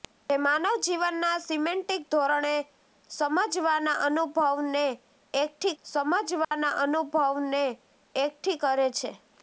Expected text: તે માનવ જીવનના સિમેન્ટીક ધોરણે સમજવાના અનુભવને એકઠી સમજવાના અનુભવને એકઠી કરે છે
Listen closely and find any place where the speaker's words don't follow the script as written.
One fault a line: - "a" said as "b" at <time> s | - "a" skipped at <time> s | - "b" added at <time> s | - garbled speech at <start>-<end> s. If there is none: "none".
none